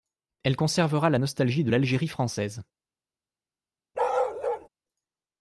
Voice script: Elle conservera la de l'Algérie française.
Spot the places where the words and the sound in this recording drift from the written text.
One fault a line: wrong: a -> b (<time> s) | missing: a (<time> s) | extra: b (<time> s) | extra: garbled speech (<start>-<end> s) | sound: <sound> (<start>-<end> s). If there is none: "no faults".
extra: nostalgie (1.2 s)
sound: bark (3.9-4.7 s)